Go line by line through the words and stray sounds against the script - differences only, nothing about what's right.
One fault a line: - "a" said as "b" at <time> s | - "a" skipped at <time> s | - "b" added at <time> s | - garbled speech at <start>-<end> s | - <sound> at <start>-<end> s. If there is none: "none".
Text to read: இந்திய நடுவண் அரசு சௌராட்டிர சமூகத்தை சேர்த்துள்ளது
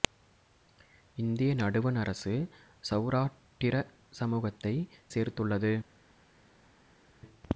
none